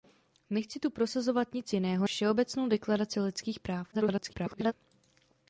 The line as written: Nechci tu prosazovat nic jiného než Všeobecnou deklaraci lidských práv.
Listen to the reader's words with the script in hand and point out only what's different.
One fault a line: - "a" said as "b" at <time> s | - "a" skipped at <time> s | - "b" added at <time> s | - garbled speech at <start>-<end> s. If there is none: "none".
- "než" skipped at 2.1 s
- garbled speech at 3.9-4.7 s